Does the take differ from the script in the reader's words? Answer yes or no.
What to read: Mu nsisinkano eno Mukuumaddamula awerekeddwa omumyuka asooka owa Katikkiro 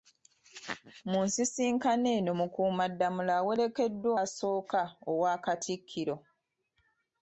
yes